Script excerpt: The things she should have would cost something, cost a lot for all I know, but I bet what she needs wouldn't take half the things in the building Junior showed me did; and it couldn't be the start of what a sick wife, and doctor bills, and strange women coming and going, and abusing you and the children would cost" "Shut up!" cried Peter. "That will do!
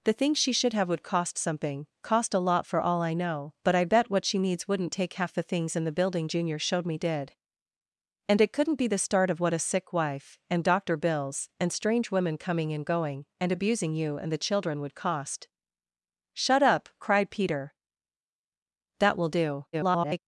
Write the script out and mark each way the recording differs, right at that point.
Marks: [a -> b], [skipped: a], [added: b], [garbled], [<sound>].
The things she should have would cost something, cost a lot for all I know, but I bet what she needs wouldn't take half the things in the building Junior showed me did; and it couldn't be the start of what a sick wife, and doctor bills, and strange women coming and going, and abusing you and the children would cost" "Shut up!" cried Peter. "That will do! [garbled]